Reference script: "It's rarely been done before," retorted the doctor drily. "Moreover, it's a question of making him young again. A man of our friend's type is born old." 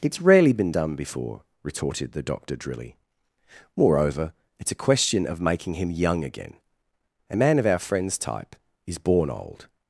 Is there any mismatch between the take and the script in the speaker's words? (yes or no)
no